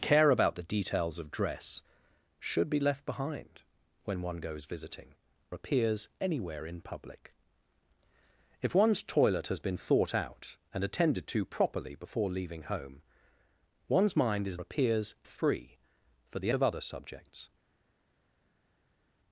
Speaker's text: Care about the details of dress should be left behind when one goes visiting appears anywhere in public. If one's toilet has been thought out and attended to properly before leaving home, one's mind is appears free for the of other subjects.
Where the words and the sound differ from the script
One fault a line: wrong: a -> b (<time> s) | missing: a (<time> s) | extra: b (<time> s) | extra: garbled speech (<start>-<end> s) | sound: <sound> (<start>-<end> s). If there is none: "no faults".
no faults